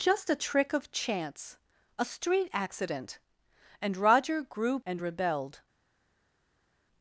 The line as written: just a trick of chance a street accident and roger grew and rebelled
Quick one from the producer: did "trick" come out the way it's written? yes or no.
yes